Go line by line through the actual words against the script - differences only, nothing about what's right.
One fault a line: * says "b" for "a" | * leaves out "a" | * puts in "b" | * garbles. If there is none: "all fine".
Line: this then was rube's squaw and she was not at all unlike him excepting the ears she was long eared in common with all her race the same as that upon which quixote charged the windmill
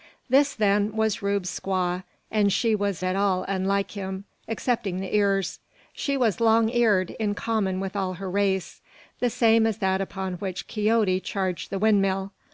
* leaves out "not"